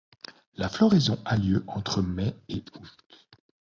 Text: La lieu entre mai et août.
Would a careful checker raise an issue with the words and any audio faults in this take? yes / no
yes